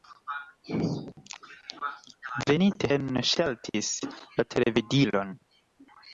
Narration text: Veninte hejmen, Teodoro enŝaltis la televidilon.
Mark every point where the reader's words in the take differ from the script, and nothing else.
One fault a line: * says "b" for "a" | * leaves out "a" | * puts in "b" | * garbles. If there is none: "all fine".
* leaves out "hejmen Teodoro"